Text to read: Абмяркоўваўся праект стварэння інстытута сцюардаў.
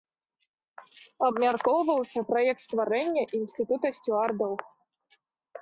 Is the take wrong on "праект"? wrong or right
right